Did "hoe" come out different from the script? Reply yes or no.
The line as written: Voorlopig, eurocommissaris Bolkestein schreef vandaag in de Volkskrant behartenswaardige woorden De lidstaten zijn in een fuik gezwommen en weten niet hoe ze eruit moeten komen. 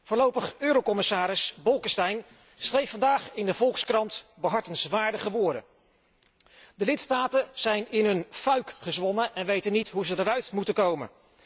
no